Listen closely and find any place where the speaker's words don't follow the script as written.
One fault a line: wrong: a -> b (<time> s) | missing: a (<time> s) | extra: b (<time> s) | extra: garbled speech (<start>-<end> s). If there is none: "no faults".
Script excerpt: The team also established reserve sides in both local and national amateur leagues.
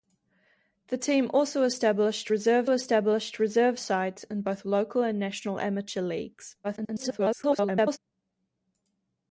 extra: established reserve (2.7 s)
extra: garbled speech (6.6-8.0 s)